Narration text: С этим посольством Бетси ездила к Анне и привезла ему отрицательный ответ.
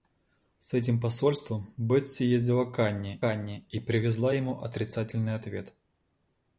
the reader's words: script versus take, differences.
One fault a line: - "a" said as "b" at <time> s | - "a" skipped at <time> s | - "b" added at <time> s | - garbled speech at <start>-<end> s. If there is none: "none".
- "Анне" added at 3.2 s